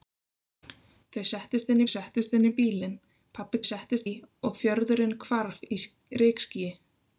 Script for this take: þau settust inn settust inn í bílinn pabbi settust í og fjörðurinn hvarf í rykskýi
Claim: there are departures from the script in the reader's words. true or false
false